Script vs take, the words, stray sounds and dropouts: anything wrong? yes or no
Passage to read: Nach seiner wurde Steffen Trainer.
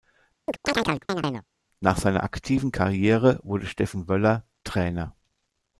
yes